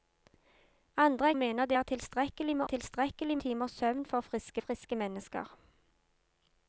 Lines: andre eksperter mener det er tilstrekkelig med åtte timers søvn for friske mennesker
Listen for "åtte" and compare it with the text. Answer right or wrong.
wrong